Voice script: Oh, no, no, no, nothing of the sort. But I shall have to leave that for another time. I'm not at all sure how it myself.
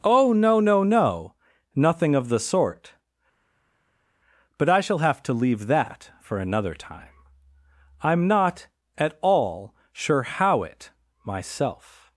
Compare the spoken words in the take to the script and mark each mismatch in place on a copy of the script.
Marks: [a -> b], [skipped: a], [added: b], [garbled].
Oh, no, no, no, nothing of the sort. But I shall have to leave that for another time. I'm not at all sure how it myself.